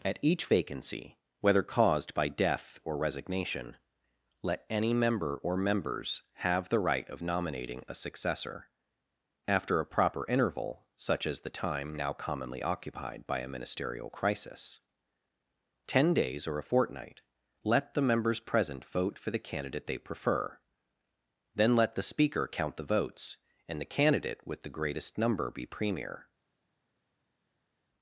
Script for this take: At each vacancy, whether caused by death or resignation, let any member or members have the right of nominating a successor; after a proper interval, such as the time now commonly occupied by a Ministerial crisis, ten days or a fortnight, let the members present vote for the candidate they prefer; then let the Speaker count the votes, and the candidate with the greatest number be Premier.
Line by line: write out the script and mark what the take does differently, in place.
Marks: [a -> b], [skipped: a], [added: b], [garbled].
At each vacancy, whether caused by death or resignation, let any member or members have the right of nominating a successor; after a proper interval, such as the time now commonly occupied by a Ministerial crisis, ten days or a fortnight, let the members present vote for the candidate they prefer; then let the Speaker count the votes, and the candidate with the greatest number be Premier.